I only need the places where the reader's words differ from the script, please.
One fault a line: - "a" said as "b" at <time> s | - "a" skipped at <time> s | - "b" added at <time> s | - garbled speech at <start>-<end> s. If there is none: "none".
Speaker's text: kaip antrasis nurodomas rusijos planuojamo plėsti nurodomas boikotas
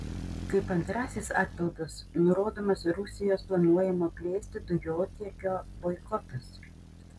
- "atpildas" added at 1.4 s
- "nurodomas" said as "dujotiekio" at 4.7 s